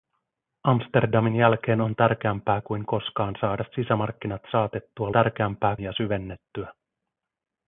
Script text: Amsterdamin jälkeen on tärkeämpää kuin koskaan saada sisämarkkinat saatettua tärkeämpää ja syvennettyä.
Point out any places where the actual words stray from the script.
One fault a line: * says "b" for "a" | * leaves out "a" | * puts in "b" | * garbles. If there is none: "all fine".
all fine